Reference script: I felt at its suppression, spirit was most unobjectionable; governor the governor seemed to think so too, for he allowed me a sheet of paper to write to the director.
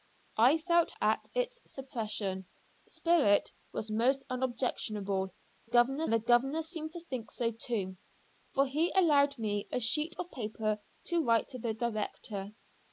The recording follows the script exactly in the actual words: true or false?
true